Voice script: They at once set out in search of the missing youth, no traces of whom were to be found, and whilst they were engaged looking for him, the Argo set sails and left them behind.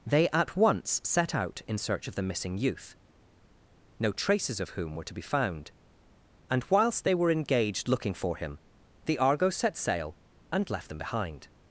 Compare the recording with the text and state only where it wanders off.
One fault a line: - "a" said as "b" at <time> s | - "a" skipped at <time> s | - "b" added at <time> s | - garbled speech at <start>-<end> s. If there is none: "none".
- "sails" said as "sail" at 9.8 s